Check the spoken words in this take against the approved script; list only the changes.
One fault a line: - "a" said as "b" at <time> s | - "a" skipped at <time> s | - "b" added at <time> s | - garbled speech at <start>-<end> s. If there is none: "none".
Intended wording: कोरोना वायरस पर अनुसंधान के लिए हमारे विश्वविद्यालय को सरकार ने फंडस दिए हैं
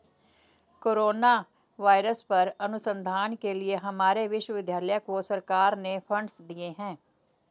none